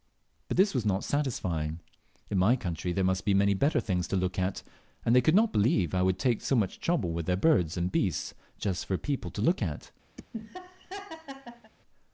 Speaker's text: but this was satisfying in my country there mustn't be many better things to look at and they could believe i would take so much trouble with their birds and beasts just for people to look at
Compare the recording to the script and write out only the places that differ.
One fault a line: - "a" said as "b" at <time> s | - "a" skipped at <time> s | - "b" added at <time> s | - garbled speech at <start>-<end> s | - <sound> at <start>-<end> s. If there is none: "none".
- "not" added at 0.8 s
- "mustn't" said as "must" at 3.0 s
- "not" added at 5.3 s
- laugh at 10.2-11.7 s